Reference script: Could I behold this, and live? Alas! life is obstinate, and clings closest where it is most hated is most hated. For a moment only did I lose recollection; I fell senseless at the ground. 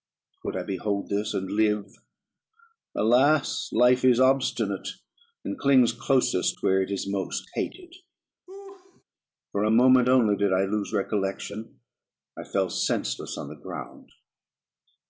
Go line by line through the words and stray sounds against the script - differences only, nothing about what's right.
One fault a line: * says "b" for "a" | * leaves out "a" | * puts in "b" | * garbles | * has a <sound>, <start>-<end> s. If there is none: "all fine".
* leaves out "is most hated"
* has a laugh, 8.5-9.0 s
* says "on" for "at"